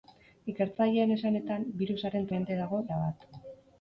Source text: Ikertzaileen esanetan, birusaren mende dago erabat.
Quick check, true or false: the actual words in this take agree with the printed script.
true